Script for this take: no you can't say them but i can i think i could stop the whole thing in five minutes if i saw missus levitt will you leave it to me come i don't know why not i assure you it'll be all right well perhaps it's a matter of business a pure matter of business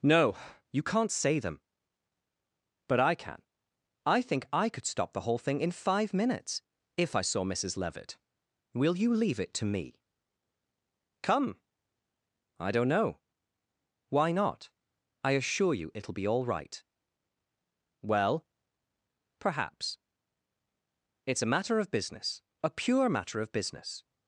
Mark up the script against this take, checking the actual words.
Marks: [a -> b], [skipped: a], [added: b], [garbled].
no you can't say them but i can i think i could stop the whole thing in five minutes if i saw missus levitt will you leave it to me come i don't know why not i assure you it'll be all right well perhaps it's a matter of business a pure matter of business